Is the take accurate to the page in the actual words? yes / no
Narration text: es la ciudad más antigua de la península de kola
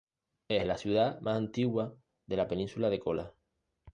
yes